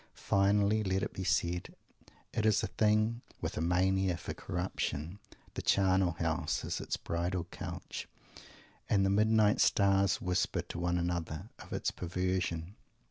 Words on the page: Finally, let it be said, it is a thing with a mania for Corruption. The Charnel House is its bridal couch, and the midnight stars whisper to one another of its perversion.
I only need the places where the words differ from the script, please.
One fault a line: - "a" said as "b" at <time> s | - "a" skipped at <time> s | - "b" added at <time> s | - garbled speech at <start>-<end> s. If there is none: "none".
none